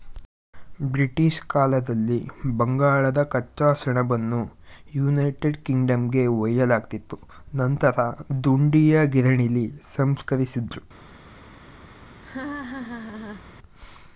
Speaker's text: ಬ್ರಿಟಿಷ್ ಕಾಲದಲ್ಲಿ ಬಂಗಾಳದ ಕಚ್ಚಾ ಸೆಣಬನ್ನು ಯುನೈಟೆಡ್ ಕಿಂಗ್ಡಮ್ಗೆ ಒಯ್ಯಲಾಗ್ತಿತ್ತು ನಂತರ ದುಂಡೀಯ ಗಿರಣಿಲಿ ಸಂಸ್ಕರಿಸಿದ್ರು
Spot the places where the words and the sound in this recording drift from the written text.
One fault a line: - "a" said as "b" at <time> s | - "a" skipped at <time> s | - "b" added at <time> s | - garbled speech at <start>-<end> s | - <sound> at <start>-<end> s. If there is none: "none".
- laugh at 12.2-13.5 s